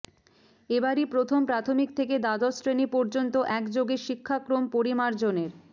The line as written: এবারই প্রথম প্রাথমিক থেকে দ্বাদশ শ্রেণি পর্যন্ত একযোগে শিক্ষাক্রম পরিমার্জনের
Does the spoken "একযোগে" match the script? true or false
true